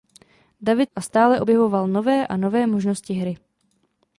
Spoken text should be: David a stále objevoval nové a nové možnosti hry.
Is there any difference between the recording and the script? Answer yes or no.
no